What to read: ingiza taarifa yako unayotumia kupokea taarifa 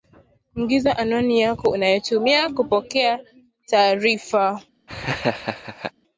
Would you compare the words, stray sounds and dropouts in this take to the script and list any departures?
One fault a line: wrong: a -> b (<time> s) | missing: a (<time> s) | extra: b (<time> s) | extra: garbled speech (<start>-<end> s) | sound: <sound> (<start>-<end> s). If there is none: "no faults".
wrong: taarifa -> anwani (1.0 s)
sound: laugh (4.9-5.9 s)